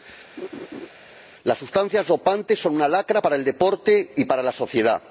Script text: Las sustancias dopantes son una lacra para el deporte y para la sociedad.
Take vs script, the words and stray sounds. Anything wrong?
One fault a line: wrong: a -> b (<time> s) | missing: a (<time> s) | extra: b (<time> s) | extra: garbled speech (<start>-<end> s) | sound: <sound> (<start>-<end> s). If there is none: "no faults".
sound: laugh (0.4-0.9 s)